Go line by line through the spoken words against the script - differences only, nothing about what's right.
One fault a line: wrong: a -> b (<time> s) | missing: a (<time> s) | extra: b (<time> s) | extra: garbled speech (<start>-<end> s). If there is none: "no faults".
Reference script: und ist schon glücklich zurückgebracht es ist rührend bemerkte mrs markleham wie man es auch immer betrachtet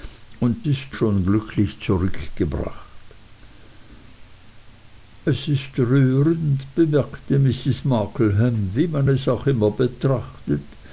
no faults